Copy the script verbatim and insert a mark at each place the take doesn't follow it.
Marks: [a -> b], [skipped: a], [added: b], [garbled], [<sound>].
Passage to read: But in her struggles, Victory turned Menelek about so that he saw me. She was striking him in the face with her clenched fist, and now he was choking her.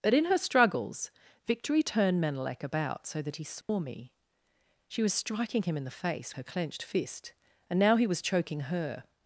But in her struggles, Victory turned Menelek about so that he saw [dropout] me. She was striking him in the face [skipped: with] her clenched fist, and now he was choking her.